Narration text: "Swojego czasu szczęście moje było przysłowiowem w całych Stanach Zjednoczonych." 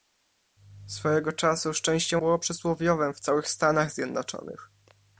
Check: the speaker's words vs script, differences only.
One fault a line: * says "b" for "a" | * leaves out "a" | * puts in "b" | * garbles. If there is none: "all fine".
* leaves out "moje"